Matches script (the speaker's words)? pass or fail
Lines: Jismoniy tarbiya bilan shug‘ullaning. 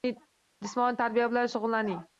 pass